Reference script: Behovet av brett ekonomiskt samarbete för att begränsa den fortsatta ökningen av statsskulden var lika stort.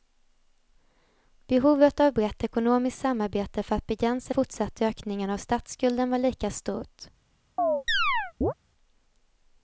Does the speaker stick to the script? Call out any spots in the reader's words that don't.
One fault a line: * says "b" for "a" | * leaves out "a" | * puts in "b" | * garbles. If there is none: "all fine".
* leaves out "den"